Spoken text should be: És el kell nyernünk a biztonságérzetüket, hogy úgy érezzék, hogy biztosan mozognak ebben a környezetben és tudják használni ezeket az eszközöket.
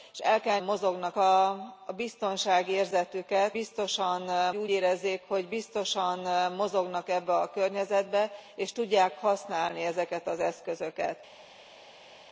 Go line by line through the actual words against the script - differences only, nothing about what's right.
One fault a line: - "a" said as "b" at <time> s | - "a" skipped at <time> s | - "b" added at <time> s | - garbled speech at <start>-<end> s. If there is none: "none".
- "nyernünk" said as "mozognak" at 0.6 s
- "hogy" said as "biztosan" at 3.5 s